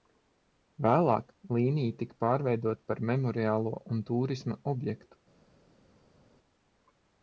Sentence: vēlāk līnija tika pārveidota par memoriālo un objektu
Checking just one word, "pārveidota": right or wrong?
right